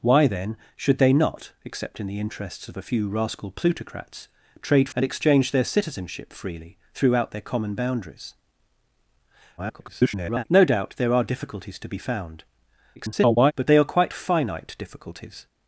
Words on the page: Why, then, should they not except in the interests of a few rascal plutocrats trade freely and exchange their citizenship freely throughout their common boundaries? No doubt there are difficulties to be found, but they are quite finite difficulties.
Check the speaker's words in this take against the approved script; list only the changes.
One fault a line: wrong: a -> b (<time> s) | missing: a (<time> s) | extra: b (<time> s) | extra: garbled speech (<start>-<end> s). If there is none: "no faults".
missing: freely (4.9 s)
extra: garbled speech (9.6-10.4 s)
extra: garbled speech (13.0-13.5 s)